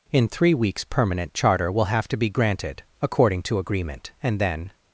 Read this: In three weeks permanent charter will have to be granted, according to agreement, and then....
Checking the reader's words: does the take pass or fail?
pass